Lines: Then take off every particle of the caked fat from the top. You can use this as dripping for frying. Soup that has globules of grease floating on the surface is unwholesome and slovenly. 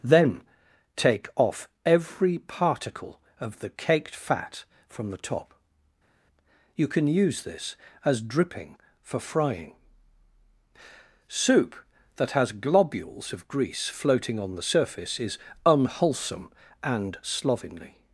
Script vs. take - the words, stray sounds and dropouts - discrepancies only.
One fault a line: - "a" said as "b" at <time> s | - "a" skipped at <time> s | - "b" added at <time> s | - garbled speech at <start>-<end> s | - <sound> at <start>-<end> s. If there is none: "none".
none